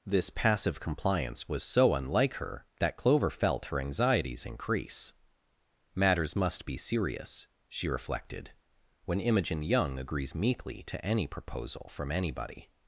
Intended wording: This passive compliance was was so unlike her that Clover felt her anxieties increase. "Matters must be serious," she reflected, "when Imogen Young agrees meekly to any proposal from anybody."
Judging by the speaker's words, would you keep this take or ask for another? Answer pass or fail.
fail